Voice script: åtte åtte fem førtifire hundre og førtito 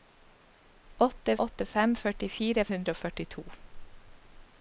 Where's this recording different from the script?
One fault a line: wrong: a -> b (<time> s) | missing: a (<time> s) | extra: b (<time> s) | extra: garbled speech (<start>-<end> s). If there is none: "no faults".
no faults